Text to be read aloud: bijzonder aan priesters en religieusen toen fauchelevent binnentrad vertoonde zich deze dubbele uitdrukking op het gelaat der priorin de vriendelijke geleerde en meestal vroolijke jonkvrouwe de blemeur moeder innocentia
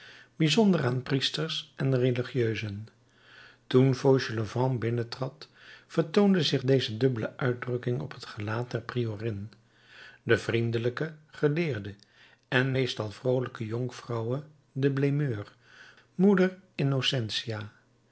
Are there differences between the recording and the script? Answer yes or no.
no